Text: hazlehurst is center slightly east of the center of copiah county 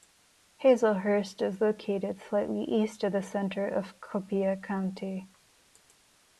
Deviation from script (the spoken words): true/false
true